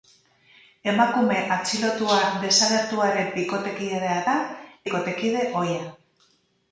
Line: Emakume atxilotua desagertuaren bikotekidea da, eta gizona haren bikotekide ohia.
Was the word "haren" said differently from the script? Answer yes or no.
yes